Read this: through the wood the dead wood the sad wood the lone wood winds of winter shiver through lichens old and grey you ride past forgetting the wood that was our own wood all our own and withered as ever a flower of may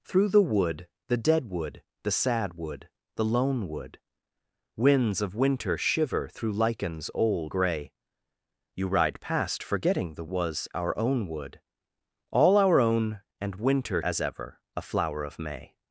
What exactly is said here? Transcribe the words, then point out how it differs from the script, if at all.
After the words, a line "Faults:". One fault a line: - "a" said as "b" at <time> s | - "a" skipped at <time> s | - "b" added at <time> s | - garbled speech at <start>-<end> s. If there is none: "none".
through the wood the dead wood the sad wood the lone wood winds of winter shiver through lichens old grey you ride past forgetting the was our own wood all our own and winter as ever a flower of may
Faults:
- "and" skipped at 7.5 s
- "wood that" skipped at 10.3 s
- "withered" said as "winter" at 13.6 s